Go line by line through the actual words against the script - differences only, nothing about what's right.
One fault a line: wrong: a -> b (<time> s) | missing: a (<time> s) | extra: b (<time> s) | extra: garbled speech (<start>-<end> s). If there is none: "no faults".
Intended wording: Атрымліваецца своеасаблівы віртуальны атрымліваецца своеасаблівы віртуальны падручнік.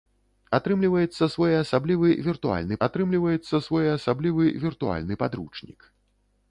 no faults